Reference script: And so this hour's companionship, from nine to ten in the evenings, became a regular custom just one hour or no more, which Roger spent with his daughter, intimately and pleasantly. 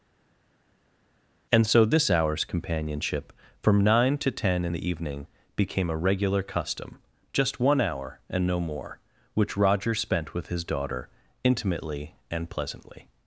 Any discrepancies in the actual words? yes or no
yes